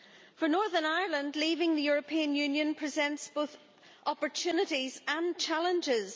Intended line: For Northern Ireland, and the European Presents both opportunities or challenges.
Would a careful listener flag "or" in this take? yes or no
yes